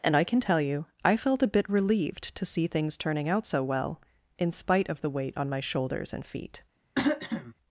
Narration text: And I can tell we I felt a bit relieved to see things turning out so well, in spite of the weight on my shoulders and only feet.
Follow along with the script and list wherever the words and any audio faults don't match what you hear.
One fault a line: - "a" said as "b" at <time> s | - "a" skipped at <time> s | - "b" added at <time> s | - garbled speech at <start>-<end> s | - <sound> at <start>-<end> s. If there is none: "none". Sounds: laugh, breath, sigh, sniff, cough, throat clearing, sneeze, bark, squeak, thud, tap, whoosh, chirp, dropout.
- "we" said as "you" at 0.6 s
- "only" skipped at 6.3 s
- throat clearing at 7.0-7.5 s